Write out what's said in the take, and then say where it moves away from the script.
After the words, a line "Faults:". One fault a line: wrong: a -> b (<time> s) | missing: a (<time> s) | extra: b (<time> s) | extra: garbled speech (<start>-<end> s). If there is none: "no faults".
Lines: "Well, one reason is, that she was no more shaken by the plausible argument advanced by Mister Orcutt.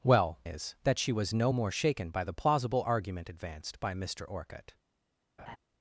"Well, is, that she was no more shaken by the plausible argument advanced by Mister Orcutt.
Faults:
missing: one reason (0.4 s)